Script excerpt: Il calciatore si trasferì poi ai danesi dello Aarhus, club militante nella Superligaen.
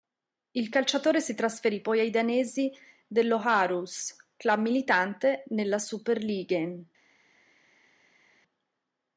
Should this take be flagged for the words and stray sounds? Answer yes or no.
no